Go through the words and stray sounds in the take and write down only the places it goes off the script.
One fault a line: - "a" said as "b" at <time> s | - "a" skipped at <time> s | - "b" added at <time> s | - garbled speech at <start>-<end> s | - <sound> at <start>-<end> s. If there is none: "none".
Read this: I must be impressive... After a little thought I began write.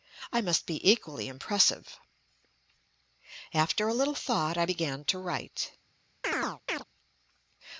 - "equally" added at 0.9 s
- "to" added at 5.0 s
- chirp at 6.2-6.8 s